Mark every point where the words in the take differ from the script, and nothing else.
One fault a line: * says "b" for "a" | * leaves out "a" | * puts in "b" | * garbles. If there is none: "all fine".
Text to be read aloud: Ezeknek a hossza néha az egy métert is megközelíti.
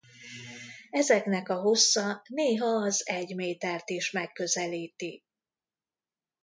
all fine